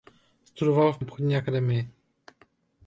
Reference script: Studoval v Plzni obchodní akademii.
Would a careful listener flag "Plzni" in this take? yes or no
yes